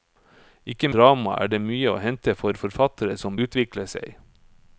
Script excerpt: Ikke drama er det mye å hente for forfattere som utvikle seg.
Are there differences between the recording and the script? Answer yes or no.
no